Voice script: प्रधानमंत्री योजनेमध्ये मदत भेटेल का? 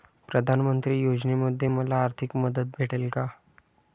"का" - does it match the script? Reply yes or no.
yes